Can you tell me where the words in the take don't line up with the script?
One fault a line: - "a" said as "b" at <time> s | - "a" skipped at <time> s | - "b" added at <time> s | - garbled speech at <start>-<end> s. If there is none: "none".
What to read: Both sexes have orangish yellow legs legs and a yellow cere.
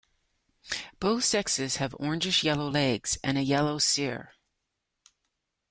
- "legs" skipped at 3.2 s